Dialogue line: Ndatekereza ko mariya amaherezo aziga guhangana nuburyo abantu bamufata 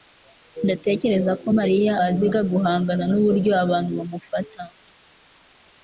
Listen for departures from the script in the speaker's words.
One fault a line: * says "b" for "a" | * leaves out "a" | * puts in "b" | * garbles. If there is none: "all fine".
* leaves out "amaherezo"